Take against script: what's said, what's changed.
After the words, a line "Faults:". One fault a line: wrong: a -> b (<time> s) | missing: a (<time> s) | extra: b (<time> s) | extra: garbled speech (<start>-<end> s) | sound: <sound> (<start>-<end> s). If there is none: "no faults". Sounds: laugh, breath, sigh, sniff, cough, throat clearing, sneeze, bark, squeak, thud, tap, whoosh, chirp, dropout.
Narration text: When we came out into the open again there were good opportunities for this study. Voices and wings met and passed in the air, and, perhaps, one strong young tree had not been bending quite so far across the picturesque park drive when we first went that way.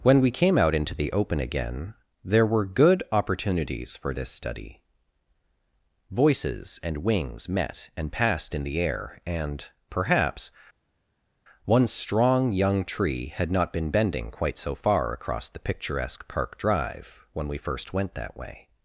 When we came out into the open again there were good opportunities for this study. Voices and wings met and passed in the air, and, perhaps, one strong young tree had not been bending quite so far across the picturesque park drive when we first went that way.
Faults:
no faults